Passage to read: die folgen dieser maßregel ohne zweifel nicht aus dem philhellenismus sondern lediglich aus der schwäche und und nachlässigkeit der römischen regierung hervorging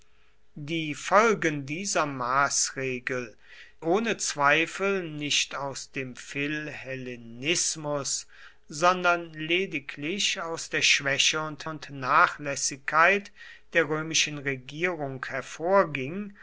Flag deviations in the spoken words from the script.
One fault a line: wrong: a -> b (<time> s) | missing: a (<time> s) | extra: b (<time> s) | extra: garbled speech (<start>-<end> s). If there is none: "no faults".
no faults